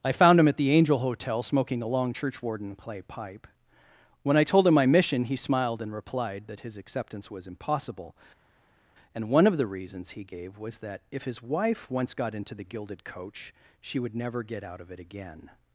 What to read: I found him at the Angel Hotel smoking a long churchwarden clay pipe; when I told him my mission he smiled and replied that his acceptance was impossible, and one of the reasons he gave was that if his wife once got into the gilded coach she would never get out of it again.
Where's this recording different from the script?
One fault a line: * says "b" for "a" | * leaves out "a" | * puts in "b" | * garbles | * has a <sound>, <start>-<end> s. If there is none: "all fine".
all fine